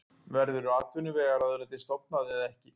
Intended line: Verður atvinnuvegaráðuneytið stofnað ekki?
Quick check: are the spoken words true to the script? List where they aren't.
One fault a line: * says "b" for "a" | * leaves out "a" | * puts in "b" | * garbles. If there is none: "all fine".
* puts in "eða"